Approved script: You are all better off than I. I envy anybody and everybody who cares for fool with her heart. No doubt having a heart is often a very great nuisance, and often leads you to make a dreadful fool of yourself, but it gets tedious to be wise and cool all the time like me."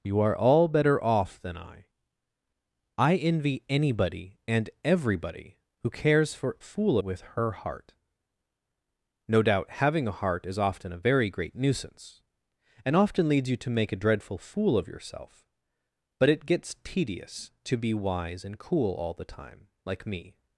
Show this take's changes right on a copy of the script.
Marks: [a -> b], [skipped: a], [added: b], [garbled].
You are all better off than I. I envy anybody and everybody who cares for fool with her heart. No doubt having a heart is often a very great nuisance, and often leads you to make a dreadful fool of yourself, but it gets tedious to be wise and cool all the time like me."